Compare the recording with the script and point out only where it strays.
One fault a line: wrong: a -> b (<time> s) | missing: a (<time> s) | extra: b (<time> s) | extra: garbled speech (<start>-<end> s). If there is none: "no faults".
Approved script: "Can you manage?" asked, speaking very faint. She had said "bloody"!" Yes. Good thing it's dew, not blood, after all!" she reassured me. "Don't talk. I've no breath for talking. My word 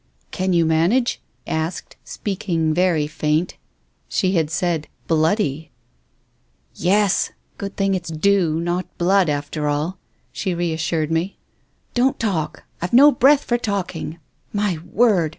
no faults